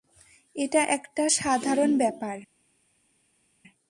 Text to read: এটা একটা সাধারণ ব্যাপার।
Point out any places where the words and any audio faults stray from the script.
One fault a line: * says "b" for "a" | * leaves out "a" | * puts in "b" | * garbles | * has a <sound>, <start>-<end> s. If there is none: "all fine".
all fine